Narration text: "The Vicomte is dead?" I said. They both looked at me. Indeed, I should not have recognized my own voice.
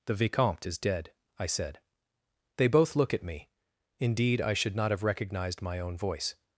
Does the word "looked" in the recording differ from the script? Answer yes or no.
yes